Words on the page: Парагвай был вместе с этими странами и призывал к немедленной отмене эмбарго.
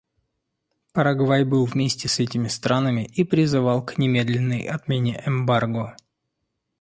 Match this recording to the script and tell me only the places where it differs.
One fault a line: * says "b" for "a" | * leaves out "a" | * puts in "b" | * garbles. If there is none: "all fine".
all fine